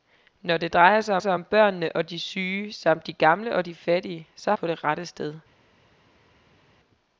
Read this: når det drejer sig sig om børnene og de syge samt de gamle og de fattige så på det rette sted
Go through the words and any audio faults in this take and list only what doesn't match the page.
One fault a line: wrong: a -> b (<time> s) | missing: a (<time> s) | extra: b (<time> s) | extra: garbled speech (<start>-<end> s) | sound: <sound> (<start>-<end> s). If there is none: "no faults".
no faults